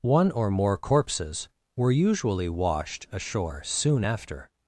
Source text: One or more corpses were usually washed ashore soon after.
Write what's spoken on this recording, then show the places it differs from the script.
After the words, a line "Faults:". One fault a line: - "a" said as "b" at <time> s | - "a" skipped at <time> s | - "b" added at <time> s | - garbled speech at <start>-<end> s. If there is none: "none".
One or more corpses were usually washed ashore soon after.
Faults:
none